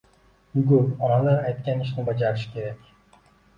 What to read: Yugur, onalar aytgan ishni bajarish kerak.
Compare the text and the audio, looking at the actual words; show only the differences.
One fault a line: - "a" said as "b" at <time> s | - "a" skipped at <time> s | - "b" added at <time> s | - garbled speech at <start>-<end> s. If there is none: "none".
none